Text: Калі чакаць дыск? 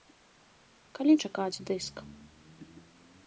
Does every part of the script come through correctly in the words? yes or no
yes